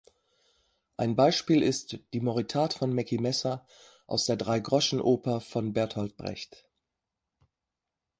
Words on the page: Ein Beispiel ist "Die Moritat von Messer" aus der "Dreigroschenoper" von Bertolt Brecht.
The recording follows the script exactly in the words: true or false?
false